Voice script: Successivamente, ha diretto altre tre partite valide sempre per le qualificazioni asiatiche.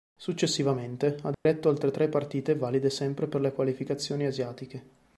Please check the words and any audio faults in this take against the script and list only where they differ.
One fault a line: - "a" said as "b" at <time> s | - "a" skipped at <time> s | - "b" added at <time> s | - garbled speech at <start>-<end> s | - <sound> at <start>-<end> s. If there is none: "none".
- dropout at 1.3-1.5 s